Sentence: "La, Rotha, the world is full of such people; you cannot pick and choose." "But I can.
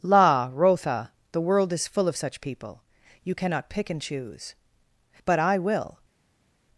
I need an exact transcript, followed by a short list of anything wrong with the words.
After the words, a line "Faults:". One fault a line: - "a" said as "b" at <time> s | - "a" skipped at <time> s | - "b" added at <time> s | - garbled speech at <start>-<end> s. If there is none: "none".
"La, Rotha, the world is full of such people; you cannot pick and choose." "But I will.
Faults:
- "can" said as "will" at 5.6 s